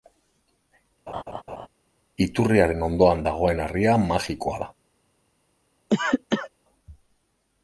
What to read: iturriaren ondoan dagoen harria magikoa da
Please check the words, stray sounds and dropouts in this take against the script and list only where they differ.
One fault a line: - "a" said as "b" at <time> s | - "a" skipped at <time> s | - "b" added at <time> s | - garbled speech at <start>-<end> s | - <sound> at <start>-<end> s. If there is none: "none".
- laugh at 1.1-1.7 s
- cough at 5.9-6.5 s